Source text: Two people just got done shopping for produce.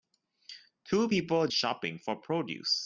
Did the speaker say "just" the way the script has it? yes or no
no